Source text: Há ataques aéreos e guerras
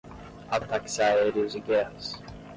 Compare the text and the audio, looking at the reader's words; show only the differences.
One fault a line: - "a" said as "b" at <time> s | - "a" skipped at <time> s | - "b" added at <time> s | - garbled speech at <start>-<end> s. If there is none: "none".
none